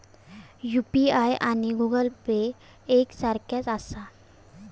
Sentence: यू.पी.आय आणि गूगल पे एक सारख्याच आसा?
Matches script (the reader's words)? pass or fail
pass